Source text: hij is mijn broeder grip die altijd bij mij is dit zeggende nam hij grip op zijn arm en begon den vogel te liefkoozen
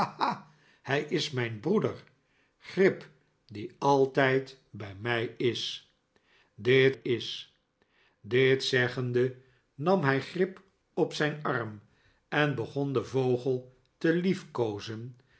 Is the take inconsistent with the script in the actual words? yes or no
yes